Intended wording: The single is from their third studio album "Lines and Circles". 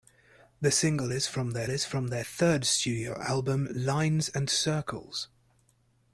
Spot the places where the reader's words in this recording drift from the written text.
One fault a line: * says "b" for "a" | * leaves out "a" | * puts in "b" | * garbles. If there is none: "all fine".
* puts in "is from their"